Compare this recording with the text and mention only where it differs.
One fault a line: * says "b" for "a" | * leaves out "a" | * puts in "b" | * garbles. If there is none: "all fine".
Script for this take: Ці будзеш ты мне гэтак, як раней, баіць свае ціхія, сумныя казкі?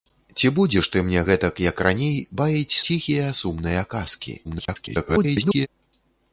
* leaves out "свае"
* garbles